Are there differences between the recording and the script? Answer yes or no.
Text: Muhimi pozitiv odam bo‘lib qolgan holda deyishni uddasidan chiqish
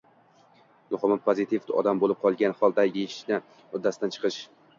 no